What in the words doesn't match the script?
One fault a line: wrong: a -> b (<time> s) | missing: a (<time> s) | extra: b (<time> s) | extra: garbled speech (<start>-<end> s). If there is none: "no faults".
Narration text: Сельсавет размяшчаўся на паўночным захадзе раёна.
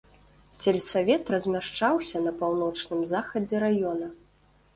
no faults